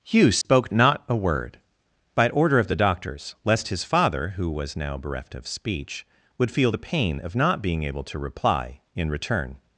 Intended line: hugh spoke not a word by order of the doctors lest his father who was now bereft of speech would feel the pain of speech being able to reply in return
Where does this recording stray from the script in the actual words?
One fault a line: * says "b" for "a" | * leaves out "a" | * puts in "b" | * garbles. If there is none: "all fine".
* says "not" for "speech"